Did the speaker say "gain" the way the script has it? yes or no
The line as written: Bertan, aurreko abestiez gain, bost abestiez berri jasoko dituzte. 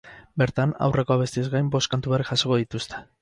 yes